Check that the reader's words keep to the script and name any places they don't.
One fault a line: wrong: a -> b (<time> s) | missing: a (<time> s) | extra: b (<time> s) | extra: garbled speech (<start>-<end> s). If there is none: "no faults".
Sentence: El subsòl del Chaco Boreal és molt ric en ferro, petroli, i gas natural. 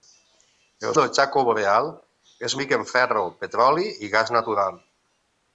missing: subsòl (0.9 s)
missing: molt (2.6 s)